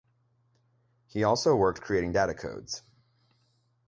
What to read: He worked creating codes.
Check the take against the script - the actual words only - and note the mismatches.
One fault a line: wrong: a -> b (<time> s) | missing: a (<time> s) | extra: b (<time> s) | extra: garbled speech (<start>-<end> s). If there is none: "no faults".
extra: also (1.2 s)
extra: data (2.1 s)